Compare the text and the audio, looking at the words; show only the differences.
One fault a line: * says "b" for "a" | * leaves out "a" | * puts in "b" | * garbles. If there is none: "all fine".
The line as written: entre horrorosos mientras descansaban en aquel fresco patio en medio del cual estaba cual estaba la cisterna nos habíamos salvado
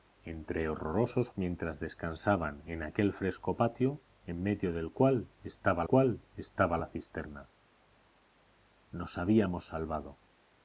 all fine